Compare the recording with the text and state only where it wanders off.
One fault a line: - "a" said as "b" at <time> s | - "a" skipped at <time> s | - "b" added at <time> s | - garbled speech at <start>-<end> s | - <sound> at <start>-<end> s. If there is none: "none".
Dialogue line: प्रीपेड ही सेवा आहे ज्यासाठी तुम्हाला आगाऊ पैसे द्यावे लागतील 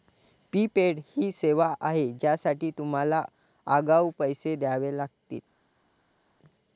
none